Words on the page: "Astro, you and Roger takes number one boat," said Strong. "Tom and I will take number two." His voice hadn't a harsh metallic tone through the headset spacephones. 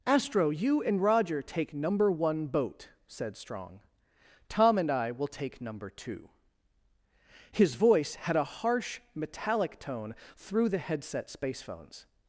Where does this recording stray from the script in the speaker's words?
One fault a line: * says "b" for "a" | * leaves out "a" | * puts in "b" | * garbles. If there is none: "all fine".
* says "take" for "takes"
* says "had" for "hadn't"